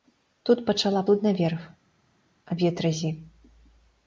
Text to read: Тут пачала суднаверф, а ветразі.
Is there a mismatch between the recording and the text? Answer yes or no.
no